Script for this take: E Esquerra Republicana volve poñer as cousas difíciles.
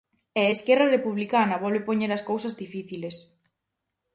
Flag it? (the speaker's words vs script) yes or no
no